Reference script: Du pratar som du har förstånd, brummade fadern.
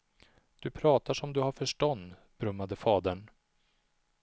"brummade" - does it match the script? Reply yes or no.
yes